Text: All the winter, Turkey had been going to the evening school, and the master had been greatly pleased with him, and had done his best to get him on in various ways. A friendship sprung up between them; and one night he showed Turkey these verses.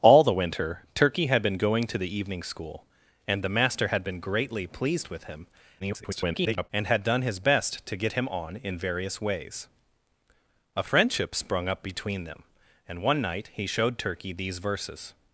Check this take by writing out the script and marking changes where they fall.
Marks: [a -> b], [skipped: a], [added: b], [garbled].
All the winter, Turkey had been going to the evening school, and the master had been greatly pleased with him, [garbled] and had done his best to get him on in various ways. A friendship sprung up between them; and one night he showed Turkey these verses.